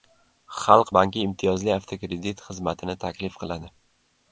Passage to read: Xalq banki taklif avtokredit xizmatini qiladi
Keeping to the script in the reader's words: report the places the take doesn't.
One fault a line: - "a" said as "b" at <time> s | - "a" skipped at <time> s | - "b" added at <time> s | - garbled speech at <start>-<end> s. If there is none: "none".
- "taklif" said as "imtiyozli" at 1.3 s
- "taklif" added at 3.1 s